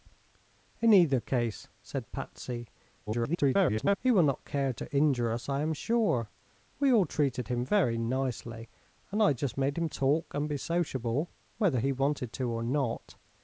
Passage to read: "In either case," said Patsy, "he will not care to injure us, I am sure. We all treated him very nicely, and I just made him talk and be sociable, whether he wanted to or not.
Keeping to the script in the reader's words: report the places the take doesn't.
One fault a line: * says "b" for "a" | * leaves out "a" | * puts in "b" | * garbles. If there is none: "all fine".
* garbles